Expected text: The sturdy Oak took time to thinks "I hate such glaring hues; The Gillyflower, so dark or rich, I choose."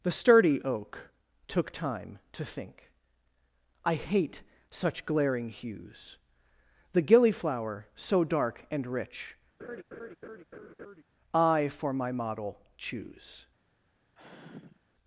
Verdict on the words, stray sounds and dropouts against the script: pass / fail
fail